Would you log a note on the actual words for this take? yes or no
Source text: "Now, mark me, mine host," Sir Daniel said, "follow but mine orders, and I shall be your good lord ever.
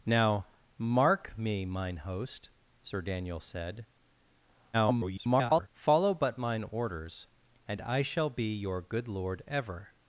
yes